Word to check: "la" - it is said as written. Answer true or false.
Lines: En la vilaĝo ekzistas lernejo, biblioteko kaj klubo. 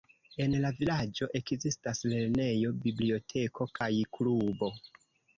true